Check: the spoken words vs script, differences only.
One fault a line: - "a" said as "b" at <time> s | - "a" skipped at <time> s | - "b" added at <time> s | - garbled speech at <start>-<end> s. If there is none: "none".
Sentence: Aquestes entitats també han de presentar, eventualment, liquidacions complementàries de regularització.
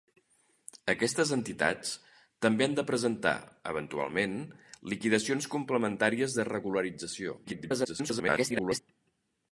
- garbled speech at 7.4-8.8 s